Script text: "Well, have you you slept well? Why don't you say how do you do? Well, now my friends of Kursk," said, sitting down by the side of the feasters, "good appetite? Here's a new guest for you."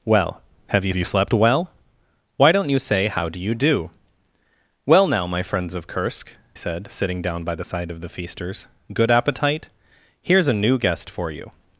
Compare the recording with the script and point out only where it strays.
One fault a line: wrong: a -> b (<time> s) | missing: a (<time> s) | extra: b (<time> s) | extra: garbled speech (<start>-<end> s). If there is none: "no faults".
no faults